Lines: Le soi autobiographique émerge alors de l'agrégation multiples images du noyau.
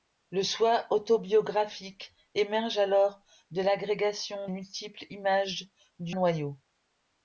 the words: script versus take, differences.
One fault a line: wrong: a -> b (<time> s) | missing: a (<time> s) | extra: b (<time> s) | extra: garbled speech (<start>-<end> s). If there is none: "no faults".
no faults